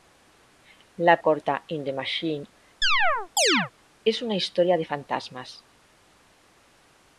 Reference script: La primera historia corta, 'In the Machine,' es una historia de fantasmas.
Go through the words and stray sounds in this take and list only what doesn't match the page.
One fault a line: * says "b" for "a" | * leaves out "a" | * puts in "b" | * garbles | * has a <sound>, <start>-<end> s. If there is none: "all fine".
* leaves out "primera historia"
* has a chirp, 2.8-3.7 s